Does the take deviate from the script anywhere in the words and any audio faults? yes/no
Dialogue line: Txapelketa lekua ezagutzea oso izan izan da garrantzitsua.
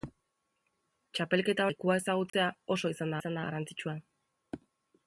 yes